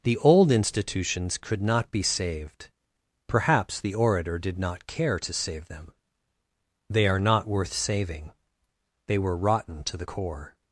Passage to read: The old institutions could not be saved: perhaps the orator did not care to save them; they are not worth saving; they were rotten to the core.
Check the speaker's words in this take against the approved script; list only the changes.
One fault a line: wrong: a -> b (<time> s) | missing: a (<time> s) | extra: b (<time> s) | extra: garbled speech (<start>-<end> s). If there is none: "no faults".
no faults